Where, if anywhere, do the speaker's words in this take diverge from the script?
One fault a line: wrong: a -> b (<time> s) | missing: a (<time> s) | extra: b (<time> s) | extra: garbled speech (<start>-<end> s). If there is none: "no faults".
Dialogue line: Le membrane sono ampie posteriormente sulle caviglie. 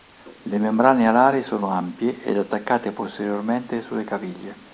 extra: alari (1.1 s)
extra: ed attaccate (2.2 s)